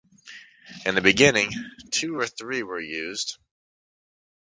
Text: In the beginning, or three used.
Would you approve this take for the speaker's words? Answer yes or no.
no